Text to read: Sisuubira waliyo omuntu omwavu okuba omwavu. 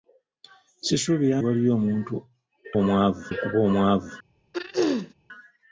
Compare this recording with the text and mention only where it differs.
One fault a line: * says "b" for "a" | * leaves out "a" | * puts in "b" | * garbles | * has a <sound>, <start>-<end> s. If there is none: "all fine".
* has a throat clearing, 4.5-5.1 s